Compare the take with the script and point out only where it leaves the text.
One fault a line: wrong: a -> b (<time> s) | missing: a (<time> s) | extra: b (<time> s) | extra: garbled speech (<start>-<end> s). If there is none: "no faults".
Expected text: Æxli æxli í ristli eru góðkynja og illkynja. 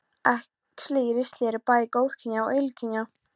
missing: æxli (1.0 s)
extra: bæði (1.7 s)